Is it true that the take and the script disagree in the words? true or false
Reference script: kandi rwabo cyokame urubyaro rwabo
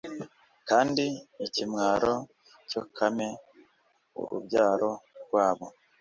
true